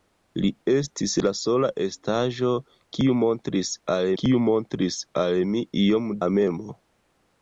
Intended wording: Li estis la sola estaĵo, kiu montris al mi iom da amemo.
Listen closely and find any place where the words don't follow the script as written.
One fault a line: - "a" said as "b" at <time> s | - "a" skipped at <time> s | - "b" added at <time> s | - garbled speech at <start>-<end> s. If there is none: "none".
- "kiu montris al" added at 4.2 s
- "da" skipped at 6.1 s